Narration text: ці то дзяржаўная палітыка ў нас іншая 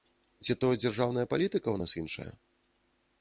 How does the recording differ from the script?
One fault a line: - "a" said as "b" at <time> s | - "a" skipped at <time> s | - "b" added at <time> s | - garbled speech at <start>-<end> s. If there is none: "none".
none